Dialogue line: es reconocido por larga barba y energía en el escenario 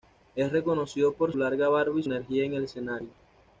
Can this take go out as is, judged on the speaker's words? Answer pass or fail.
pass